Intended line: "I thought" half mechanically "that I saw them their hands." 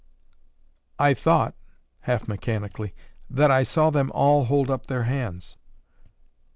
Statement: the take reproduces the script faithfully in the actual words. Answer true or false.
false